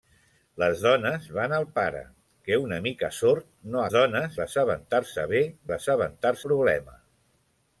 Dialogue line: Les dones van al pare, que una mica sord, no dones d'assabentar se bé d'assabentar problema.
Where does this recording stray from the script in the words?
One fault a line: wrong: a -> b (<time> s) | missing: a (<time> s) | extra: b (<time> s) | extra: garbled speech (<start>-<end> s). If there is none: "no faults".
no faults